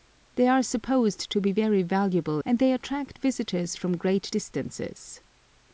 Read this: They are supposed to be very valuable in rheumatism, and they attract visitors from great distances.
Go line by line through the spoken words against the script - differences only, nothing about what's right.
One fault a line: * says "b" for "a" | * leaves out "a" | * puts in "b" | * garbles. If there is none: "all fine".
* leaves out "in rheumatism"